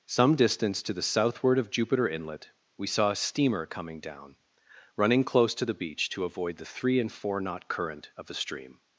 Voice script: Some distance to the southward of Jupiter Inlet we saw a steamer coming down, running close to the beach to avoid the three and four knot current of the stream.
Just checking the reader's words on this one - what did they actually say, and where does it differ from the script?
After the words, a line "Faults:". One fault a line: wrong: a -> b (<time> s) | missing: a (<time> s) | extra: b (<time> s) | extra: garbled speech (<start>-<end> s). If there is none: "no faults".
Some distance to the southward of Jupiter Inlet we saw a steamer coming down, running close to the beach to avoid the three and four knot current of the stream.
Faults:
no faults